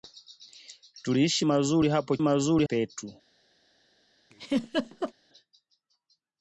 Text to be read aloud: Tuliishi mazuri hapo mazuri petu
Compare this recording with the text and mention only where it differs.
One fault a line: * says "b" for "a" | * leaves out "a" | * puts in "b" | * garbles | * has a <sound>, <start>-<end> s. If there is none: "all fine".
* has a laugh, 4.3-5.1 s